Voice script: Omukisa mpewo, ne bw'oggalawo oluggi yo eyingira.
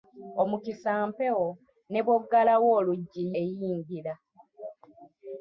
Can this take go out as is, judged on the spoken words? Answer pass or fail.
fail